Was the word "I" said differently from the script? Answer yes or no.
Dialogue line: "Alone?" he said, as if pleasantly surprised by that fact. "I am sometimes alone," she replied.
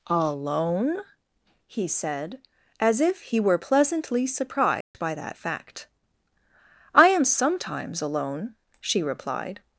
no